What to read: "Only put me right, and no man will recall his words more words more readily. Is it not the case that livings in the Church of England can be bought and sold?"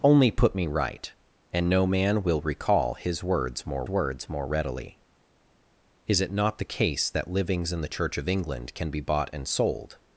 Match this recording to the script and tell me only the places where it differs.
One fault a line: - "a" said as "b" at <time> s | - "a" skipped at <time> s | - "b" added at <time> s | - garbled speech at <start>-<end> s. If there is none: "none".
none